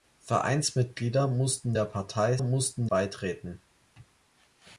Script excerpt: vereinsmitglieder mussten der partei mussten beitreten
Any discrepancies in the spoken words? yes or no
no